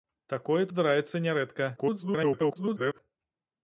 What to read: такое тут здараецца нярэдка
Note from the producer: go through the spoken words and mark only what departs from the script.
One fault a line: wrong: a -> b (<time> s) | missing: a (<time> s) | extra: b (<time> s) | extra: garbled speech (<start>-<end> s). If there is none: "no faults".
missing: тут (0.6 s)
extra: garbled speech (1.8-3.0 s)